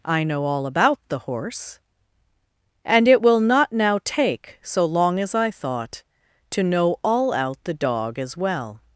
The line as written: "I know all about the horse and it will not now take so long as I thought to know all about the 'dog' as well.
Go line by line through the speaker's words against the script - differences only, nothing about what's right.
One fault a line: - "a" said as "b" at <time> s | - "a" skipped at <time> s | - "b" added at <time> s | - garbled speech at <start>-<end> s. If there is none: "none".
- "about" said as "out" at 7.3 s